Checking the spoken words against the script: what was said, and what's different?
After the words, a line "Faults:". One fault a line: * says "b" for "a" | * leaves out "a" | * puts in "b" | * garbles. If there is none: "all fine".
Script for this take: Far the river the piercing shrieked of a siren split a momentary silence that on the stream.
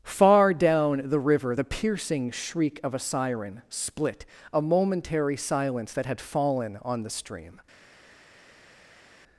Far down the river the piercing shriek of a siren split a momentary silence that had fallen on the stream.
Faults:
* puts in "down"
* says "shriek" for "shrieked"
* puts in "had fallen"